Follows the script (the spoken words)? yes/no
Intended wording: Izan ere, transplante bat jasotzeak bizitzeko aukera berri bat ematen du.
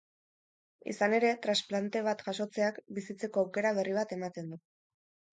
yes